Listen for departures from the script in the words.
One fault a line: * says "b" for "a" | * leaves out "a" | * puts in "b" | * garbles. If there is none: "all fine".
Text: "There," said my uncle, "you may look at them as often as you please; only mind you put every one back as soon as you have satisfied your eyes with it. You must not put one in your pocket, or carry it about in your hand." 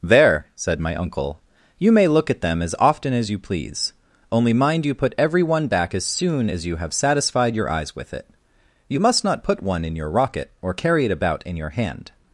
* says "rocket" for "pocket"